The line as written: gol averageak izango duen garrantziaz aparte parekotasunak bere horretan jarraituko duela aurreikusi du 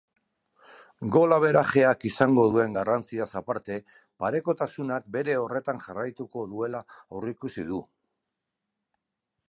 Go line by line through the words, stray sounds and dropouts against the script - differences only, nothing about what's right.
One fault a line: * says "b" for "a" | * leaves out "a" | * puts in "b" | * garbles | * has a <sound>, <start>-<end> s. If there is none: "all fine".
all fine